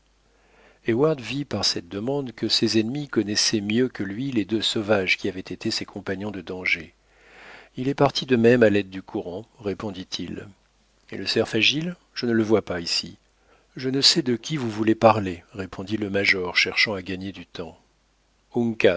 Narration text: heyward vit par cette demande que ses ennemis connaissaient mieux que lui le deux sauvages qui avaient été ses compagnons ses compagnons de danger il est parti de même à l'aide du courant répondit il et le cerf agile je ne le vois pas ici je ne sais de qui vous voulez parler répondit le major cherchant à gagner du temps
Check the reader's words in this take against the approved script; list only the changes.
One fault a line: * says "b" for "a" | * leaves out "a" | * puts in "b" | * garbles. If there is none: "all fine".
* says "les" for "le"
* leaves out "ses compagnons"